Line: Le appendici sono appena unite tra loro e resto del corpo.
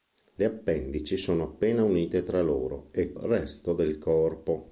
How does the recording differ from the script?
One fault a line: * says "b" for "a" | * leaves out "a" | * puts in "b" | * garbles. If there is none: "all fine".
all fine